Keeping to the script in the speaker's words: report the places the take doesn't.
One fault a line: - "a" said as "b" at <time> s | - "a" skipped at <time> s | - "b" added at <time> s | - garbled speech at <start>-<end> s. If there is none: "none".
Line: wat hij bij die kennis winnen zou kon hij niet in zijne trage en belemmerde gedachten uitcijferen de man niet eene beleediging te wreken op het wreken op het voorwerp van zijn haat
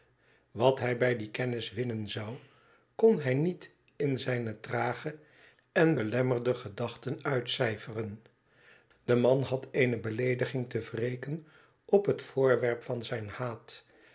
- "niet" said as "had" at 9.4 s
- "wreken op het" skipped at 12.2 s